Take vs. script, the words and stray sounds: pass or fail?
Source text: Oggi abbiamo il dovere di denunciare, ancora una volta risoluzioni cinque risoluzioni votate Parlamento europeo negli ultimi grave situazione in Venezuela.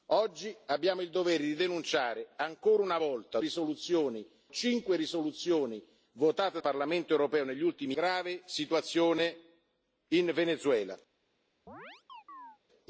fail